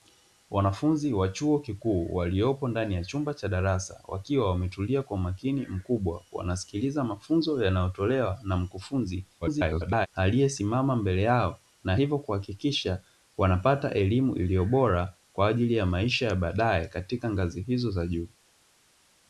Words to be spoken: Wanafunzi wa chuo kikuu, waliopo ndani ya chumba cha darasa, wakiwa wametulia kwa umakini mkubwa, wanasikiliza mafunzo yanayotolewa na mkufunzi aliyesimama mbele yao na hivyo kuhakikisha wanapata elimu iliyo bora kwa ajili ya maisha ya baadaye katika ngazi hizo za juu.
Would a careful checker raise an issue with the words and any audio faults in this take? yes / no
yes